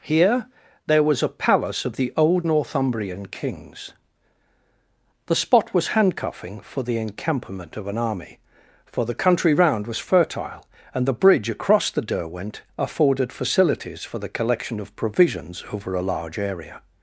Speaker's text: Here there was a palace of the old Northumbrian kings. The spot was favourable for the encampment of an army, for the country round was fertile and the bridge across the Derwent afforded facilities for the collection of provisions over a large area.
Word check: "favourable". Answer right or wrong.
wrong